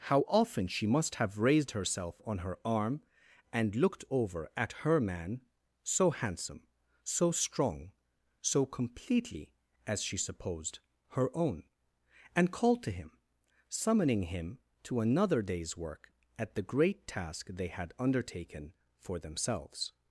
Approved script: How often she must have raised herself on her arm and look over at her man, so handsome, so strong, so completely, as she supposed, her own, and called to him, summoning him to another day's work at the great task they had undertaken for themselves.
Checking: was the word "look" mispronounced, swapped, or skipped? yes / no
yes